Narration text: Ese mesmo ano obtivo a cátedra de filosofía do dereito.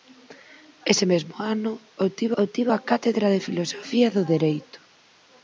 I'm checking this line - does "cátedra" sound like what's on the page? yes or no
yes